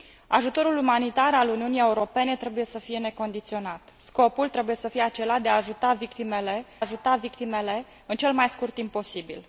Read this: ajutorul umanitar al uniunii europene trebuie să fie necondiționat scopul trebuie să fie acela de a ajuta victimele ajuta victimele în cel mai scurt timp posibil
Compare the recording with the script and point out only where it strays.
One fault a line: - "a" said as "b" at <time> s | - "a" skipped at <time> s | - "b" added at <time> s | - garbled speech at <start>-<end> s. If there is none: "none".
none